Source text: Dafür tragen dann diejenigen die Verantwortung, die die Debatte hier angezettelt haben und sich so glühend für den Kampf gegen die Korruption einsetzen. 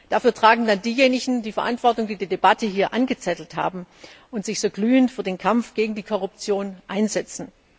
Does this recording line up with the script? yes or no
yes